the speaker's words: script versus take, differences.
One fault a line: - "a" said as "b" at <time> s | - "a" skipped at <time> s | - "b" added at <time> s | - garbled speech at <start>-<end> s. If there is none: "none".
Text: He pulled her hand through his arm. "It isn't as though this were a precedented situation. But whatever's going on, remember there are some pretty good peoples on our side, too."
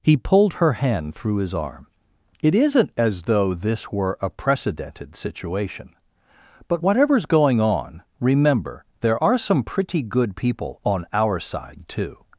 - "peoples" said as "people" at 10.3 s